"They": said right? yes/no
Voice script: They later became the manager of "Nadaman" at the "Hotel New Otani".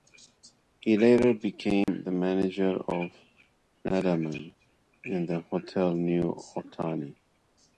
no